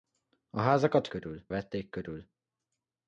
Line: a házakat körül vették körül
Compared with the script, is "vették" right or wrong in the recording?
right